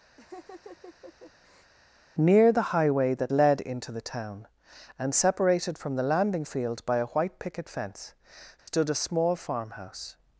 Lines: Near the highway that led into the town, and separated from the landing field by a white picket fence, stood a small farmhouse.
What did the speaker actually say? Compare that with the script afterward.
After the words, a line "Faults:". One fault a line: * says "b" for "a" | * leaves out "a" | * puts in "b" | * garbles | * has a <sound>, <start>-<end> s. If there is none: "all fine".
Near the highway that led into the town, and separated from the landing field by a white picket fence, stood a small farmhouse.
Faults:
* has a laugh, 0.2-1.7 s
* has a dropout, 8.6-8.7 s